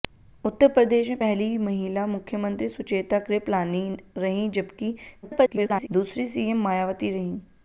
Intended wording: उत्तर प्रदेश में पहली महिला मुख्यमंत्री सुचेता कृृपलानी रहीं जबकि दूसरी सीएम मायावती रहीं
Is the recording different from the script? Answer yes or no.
yes